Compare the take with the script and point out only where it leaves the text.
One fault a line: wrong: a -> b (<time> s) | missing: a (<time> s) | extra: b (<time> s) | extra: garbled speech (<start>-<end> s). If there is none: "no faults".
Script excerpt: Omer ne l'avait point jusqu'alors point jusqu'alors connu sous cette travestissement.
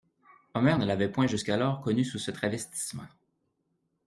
missing: point jusqu'alors (1.8 s)
wrong: cette -> ce (2.2 s)